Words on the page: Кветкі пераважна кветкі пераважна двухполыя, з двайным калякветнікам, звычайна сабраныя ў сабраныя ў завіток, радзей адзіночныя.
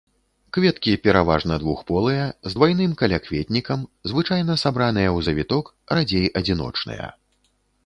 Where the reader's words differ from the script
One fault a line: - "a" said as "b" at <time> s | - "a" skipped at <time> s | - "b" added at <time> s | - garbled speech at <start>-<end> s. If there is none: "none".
- "кветкі пераважна" skipped at 1.6 s
- "сабраныя ў" skipped at 5.3 s